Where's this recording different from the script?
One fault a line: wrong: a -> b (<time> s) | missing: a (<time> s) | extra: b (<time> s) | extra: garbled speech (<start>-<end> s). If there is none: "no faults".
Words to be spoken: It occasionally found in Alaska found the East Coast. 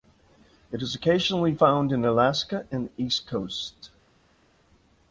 extra: is (0.8 s)
wrong: found -> and (2.7 s)